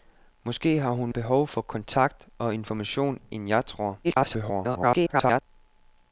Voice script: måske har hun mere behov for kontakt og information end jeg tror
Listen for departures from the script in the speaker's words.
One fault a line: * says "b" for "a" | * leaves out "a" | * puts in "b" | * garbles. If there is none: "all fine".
* leaves out "mere"
* garbles